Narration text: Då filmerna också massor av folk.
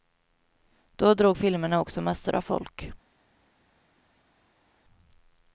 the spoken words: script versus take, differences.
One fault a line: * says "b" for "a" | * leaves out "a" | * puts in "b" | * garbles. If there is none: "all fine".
* puts in "drog"